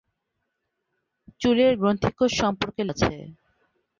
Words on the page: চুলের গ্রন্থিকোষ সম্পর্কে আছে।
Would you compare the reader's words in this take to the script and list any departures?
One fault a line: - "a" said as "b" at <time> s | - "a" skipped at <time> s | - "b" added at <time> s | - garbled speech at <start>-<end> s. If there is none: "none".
none